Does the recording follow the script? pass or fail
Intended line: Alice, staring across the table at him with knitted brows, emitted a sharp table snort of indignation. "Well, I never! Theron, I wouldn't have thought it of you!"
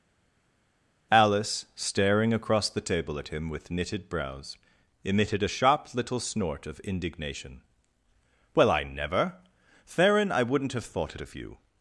fail